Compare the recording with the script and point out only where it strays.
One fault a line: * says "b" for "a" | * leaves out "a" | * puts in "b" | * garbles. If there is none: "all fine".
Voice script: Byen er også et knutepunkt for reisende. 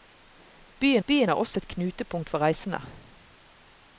* puts in "byen"